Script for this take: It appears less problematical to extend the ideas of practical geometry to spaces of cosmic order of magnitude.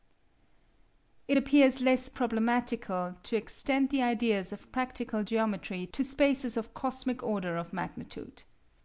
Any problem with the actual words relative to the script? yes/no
no